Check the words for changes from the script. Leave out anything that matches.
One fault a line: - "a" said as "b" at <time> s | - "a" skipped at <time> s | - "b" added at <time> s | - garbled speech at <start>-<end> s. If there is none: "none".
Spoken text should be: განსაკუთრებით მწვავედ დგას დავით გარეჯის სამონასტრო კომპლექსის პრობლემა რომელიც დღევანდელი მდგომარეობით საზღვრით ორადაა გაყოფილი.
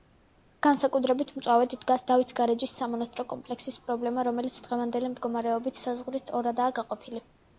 none